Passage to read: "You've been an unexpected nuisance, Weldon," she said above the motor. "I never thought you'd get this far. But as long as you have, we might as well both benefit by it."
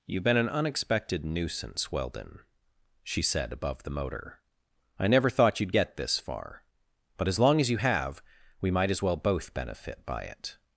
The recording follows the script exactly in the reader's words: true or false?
true